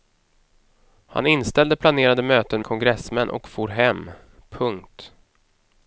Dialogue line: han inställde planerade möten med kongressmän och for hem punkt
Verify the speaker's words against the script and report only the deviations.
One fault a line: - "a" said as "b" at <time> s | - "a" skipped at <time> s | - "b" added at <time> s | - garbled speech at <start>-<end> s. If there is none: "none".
- "med" skipped at 2.6 s